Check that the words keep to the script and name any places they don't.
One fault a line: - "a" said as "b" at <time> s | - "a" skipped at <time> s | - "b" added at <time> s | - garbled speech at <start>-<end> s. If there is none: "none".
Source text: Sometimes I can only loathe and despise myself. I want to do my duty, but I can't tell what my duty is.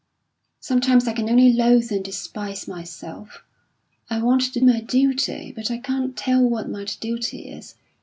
- "do" skipped at 4.6 s